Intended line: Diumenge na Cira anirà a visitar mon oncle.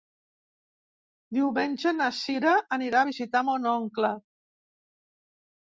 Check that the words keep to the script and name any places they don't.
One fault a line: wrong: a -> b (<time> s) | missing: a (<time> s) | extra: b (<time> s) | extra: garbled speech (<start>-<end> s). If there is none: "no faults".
no faults